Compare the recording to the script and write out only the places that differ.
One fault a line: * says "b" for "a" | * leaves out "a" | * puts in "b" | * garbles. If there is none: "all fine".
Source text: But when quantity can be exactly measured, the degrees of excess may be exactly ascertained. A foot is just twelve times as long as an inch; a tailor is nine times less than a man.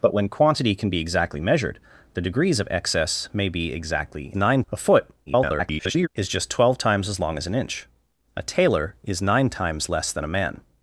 * says "nine" for "ascertained"
* garbles